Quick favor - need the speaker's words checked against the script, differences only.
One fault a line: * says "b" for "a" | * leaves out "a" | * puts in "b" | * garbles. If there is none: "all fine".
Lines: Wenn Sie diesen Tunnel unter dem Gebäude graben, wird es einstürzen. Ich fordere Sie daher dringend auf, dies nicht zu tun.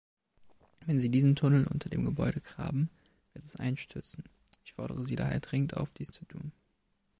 * leaves out "nicht"